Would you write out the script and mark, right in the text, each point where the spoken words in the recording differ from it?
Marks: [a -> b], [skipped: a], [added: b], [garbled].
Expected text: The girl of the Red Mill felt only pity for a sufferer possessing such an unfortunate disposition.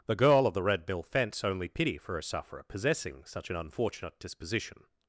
The girl of the Red Mill [felt -> fence] only pity for a sufferer possessing such an unfortunate disposition.